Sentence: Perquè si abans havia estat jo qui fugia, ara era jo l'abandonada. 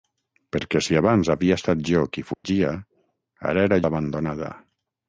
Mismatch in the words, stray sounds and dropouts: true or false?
true